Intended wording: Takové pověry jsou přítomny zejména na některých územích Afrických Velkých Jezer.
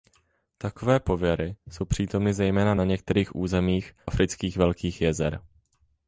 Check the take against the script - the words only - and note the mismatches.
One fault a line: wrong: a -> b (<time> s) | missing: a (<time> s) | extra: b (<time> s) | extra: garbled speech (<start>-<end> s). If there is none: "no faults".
no faults